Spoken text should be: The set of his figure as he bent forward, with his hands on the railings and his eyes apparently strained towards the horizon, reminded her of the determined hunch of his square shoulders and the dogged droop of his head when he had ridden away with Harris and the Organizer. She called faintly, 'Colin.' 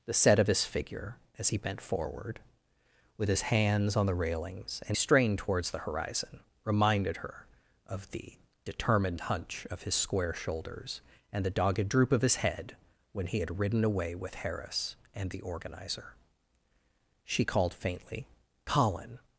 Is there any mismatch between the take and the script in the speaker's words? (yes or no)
yes